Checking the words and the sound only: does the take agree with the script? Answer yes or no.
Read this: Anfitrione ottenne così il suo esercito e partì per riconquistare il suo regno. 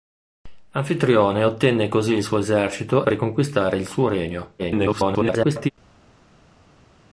no